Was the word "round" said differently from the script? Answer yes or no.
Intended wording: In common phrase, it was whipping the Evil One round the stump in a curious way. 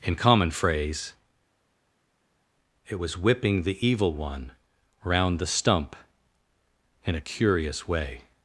no